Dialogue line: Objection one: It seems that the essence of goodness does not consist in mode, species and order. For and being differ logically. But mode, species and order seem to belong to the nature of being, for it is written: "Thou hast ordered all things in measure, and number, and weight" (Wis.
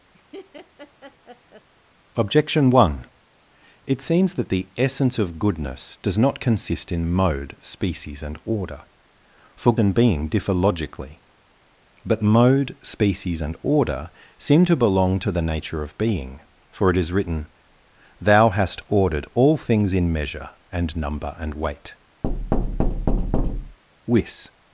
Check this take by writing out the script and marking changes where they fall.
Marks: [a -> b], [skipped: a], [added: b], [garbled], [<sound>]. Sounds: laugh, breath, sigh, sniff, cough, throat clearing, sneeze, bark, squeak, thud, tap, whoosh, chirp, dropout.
[laugh] Objection one: It seems that the essence of goodness does not consist in mode, species and order. For and being differ logically. But mode, species and order seem to belong to the nature of being, for it is written: "Thou hast ordered all things in measure, and number, and weight" [thud] (Wis.